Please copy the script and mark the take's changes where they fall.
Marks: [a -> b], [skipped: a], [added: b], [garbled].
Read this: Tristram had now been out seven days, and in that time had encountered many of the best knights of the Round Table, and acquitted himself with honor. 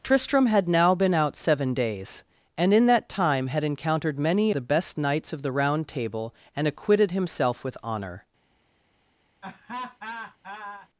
Tristram had now been out seven days, and in that time had encountered many [skipped: of] the best knights of the Round Table, and acquitted himself with honor.